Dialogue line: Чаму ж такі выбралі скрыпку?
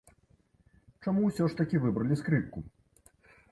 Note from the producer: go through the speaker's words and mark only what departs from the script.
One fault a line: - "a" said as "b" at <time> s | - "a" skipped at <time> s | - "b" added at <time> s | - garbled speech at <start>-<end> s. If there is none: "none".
- "ўсё" added at 1.3 s